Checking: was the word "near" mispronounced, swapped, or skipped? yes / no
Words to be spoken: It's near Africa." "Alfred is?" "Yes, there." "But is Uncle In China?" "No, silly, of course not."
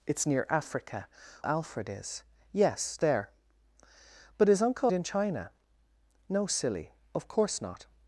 no